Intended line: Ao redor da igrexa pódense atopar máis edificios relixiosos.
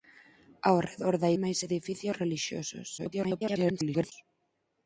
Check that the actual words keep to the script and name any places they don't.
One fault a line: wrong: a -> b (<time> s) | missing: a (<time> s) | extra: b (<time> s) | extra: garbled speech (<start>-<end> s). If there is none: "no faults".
missing: igrexa pódense atopar (1.3 s)
extra: garbled speech (3.0-4.1 s)